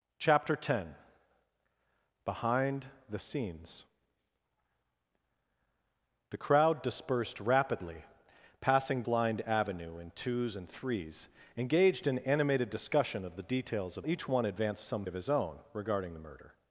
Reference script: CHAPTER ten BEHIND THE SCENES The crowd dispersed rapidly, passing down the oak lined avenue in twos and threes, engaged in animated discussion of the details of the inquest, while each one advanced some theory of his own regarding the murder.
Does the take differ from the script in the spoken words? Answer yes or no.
yes